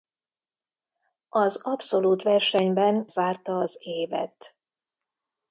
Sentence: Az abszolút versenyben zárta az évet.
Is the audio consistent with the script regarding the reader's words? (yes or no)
yes